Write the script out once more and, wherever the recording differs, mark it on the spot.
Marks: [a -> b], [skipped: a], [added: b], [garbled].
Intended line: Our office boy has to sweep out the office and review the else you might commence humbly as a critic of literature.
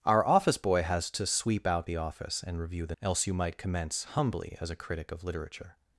Our office boy has to sweep out the office and review the else you might commence humbly as a critic of literature.